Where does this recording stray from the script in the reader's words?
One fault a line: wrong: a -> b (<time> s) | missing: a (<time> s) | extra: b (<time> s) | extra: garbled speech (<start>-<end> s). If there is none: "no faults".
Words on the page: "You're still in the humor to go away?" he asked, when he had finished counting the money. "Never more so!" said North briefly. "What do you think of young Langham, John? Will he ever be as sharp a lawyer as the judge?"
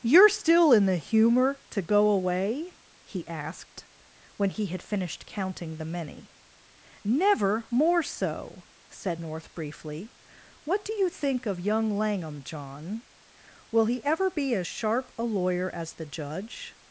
wrong: money -> many (5.8 s)